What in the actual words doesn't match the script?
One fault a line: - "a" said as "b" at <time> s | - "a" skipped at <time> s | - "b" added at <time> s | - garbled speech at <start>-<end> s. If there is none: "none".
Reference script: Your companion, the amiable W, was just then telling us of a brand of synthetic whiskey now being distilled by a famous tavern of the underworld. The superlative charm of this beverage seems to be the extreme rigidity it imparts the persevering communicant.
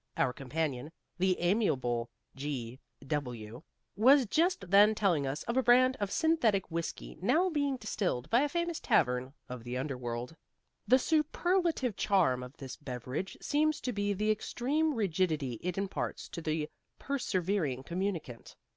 - "Your" said as "Our" at 0.2 s
- "G" added at 2.4 s
- "to" added at 16.3 s